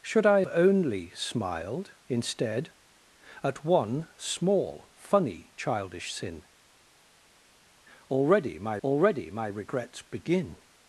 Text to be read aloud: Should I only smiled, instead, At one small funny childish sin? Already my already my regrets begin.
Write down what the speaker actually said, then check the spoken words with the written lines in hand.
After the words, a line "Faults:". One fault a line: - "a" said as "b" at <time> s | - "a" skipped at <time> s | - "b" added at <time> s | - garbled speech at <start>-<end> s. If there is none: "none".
Should I only smiled, instead, At one small funny childish sin? Already my already my regrets begin.
Faults:
none